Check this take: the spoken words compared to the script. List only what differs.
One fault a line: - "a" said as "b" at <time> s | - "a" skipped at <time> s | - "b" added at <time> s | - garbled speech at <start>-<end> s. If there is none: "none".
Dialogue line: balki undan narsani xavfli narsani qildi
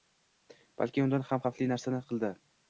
- "narsani" said as "ham" at 1.3 s